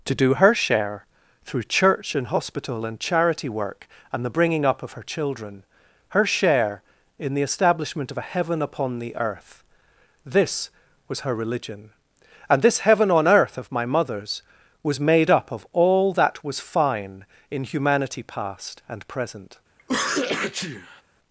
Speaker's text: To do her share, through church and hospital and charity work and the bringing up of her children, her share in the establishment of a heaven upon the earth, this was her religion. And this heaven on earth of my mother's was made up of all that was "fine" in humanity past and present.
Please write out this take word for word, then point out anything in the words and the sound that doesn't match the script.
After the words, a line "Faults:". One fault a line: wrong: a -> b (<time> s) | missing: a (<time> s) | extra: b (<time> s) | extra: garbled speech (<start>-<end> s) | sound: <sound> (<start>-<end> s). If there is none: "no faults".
To do her share, through church and hospital and charity work and the bringing up of her children, her share in the establishment of a heaven upon the earth, this was her religion. And this heaven on earth of my mother's was made up of all that was "fine" in humanity past and present.
Faults:
sound: sneeze (19.8-21.0 s)